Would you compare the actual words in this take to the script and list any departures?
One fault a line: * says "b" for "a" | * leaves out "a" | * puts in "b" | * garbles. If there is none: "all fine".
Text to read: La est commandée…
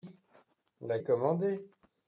all fine